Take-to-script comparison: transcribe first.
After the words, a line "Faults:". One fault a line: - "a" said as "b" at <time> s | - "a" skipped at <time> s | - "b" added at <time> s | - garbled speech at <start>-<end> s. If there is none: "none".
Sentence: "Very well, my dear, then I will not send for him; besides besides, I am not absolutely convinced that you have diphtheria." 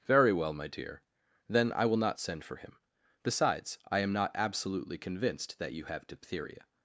"Very well, my dear, then I will not send for him; besides, I am not absolutely convinced that you have diphtheria."
Faults:
- "besides" skipped at 3.8 s